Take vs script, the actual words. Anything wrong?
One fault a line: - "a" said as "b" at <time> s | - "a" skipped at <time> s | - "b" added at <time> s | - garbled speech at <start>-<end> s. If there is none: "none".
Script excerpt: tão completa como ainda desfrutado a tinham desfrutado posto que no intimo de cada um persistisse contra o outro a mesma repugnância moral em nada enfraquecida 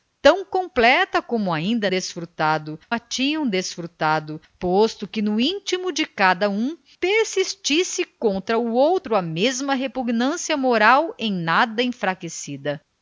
none